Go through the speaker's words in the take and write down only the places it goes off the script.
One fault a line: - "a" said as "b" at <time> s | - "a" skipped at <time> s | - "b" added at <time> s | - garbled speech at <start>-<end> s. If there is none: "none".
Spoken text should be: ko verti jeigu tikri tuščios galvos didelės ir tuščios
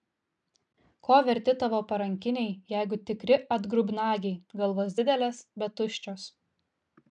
- "tavo parankiniai" added at 1.6 s
- "tuščios" said as "atgrubnagiai" at 3.6 s
- "ir" said as "bet" at 5.6 s